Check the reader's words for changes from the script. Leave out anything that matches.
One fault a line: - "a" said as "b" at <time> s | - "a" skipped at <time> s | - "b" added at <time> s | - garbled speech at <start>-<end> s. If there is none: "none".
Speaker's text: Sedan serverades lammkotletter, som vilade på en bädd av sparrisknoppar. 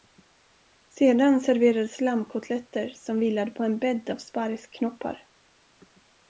none